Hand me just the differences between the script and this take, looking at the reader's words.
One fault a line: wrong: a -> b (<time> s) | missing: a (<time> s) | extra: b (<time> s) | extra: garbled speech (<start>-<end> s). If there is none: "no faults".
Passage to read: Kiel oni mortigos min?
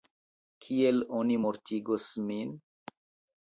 no faults